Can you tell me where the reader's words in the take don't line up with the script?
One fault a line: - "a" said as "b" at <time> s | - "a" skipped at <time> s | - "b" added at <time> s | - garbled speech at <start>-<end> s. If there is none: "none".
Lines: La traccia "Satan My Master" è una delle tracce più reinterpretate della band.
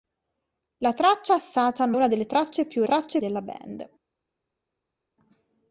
- "My Master è" skipped at 1.9 s
- "reinterpretate" said as "tracce" at 2.8 s